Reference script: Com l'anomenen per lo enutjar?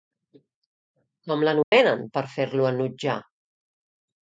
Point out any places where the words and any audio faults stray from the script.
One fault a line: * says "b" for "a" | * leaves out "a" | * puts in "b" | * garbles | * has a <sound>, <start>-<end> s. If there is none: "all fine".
* has a dropout, 1.6-1.7 s
* puts in "fer"